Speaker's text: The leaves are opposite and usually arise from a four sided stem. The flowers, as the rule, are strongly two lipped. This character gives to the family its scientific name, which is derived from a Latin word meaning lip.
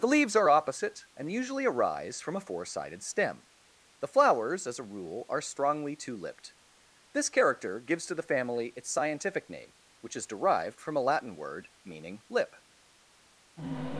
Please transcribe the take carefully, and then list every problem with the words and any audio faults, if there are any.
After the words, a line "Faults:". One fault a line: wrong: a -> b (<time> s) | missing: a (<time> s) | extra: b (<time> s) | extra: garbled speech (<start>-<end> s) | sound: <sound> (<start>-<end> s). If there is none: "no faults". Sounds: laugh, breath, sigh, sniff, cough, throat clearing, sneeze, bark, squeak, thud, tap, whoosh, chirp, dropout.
The leaves are opposite and usually arise from a four sided stem. The flowers, as a rule, are strongly two lipped. This character gives to the family its scientific name, which is derived from a Latin word meaning lip.
Faults:
wrong: the -> a (4.8 s)